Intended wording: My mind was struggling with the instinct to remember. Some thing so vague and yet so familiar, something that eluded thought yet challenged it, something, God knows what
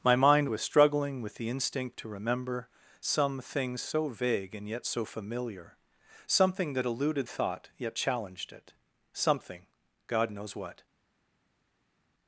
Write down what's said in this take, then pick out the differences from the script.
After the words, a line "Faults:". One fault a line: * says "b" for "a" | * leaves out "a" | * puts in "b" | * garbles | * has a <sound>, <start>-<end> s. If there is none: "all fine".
My mind was struggling with the instinct to remember. Some thing so vague and yet so familiar, something that eluded thought yet challenged it, something, God knows what
Faults:
all fine